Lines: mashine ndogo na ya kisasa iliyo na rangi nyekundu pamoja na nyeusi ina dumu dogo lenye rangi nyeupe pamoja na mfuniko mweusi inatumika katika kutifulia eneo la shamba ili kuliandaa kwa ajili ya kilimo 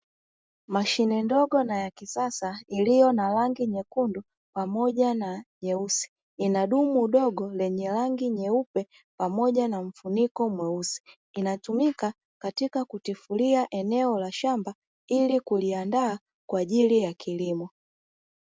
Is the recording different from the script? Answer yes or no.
no